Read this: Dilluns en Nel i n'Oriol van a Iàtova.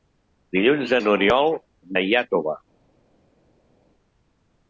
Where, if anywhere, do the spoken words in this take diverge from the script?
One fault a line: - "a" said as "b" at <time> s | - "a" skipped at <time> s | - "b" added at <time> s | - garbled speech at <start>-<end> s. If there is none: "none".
- "en Nel" skipped at 0.9 s
- "van" skipped at 1.6 s